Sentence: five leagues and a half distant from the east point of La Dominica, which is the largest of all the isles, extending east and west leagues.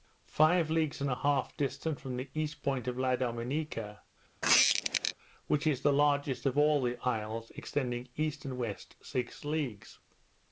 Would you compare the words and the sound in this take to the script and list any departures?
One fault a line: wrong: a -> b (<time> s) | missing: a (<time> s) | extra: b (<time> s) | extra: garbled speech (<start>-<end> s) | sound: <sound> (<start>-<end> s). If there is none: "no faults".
sound: squeak (4.4-5.1 s)
extra: six (9.0 s)